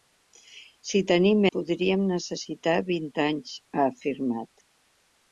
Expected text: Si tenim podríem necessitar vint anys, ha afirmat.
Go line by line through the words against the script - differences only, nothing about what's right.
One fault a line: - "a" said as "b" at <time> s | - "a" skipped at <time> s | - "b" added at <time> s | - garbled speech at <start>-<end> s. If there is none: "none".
none